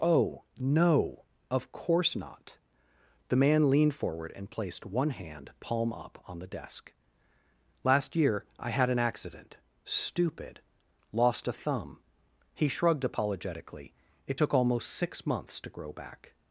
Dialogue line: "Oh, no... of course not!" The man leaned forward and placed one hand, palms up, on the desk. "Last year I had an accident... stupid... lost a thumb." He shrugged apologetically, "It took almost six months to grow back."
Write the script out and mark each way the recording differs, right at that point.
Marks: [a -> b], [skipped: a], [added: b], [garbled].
"Oh, no... of course not!" The man leaned forward and placed one hand, [palms -> palm] up, on the desk. "Last year I had an accident... stupid... lost a thumb." He shrugged apologetically, "It took almost six months to grow back."